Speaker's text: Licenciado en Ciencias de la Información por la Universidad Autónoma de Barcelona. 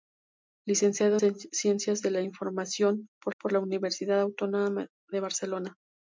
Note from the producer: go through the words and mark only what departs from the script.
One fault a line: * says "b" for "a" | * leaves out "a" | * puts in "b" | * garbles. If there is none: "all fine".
* leaves out "en"
* puts in "por"